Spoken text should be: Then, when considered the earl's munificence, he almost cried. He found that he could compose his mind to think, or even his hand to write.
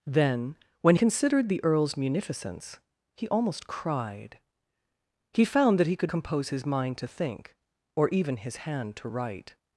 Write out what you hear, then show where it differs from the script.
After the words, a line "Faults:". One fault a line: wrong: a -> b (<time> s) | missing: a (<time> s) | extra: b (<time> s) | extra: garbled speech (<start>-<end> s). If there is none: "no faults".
Then, when considered the earl's munificence, he almost cried. He found that he could compose his mind to think, or even his hand to write.
Faults:
no faults